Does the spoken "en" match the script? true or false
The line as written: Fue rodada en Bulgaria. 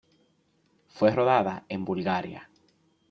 true